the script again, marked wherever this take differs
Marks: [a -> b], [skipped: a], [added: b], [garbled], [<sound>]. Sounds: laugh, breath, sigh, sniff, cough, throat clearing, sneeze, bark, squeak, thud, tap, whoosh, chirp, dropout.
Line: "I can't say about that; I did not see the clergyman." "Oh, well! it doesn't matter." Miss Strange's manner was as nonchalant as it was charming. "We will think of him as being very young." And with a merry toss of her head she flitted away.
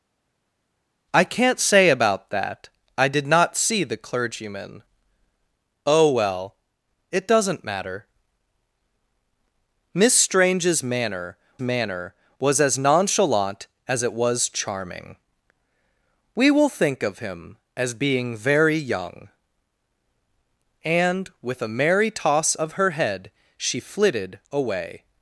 "I can't say about that; I did not see the clergyman." "Oh, well! it doesn't matter." Miss Strange's manner [added: manner] was as nonchalant as it was charming. "We will think of him as being very young." And with a merry toss of her head she flitted away.